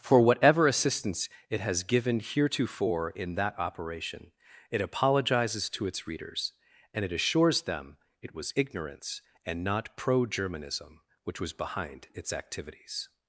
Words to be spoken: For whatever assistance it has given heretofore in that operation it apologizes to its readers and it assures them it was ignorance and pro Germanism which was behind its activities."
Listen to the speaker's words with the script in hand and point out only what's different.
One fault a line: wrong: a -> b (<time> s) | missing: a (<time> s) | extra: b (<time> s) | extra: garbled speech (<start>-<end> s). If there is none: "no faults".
extra: not (9.6 s)